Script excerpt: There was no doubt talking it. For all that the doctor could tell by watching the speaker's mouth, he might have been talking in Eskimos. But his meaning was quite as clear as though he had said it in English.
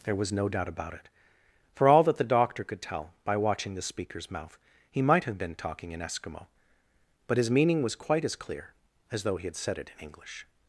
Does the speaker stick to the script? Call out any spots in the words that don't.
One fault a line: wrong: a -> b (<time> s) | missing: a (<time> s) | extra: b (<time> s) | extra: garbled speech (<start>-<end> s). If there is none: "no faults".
wrong: talking -> about (0.7 s)
wrong: Eskimos -> Eskimo (6.0 s)